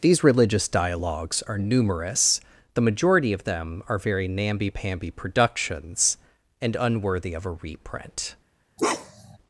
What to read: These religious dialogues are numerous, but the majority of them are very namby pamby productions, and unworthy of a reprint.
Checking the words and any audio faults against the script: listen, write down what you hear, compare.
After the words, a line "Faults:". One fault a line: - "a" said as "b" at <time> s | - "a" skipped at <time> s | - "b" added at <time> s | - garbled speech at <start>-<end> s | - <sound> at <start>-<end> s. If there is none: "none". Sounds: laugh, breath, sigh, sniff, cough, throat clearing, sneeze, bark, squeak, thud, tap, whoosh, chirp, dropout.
These religious dialogues are numerous, the majority of them are very namby pamby productions, and unworthy of a reprint.
Faults:
- "but" skipped at 2.4 s
- bark at 8.8-9.4 s